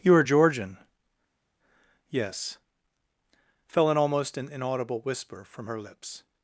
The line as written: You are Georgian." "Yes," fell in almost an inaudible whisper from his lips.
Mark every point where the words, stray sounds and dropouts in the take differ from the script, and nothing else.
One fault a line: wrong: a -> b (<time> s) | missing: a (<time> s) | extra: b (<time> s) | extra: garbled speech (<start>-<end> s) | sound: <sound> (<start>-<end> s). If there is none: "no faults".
wrong: his -> her (5.7 s)